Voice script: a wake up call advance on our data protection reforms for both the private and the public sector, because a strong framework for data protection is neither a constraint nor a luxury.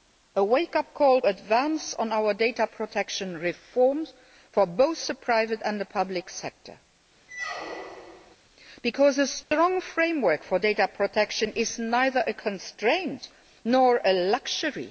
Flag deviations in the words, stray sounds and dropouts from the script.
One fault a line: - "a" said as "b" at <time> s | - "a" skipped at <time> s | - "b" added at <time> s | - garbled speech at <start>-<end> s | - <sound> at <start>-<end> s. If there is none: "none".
- squeak at 7.3-8.4 s
- dropout at 9.4-9.5 s